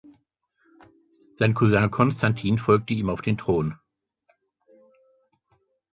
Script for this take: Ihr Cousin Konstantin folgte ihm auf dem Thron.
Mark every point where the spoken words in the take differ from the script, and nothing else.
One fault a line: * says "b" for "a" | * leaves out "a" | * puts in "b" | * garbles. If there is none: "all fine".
* says "Sein" for "Ihr"
* says "den" for "dem"